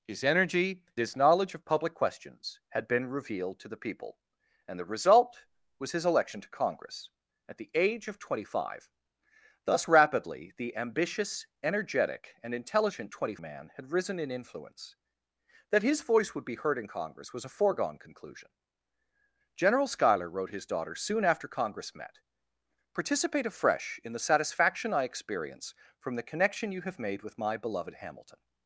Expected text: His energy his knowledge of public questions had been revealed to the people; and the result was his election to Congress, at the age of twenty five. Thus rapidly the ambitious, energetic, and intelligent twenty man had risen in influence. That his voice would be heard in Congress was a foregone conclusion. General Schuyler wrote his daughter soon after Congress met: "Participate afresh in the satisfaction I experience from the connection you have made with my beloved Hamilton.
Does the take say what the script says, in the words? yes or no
yes